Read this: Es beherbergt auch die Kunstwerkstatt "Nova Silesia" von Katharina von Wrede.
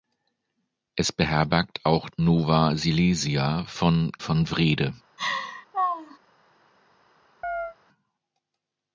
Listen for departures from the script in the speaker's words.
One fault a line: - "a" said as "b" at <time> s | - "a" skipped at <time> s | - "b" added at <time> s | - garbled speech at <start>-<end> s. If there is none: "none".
- "die Kunstwerkstatt" skipped at 2.1 s
- "Katharina" skipped at 4.1 s